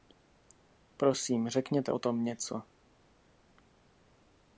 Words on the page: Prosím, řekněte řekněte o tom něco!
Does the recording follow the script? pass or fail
fail